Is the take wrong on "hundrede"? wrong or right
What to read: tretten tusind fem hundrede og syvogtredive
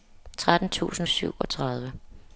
wrong